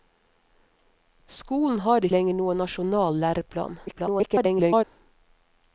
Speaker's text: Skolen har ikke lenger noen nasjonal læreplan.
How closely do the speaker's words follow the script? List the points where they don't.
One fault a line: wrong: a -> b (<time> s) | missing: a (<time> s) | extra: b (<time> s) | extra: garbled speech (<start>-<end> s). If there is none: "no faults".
missing: ikke (2.1 s)
extra: garbled speech (3.9-4.8 s)